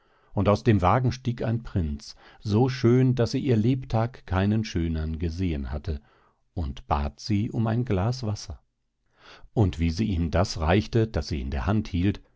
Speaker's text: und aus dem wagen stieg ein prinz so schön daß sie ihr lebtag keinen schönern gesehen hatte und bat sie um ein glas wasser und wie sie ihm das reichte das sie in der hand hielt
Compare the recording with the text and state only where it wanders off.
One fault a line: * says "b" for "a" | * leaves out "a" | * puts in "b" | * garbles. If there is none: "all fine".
all fine